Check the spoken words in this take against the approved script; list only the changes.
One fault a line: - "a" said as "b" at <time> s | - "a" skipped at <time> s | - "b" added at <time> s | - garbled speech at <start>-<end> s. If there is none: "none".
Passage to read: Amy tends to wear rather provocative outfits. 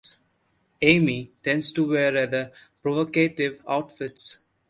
none